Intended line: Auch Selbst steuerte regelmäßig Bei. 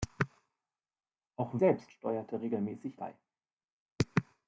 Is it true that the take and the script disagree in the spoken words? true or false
false